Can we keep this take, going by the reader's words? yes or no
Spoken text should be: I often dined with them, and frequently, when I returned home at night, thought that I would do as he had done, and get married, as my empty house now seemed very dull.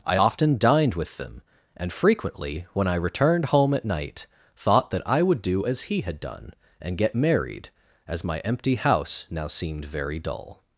yes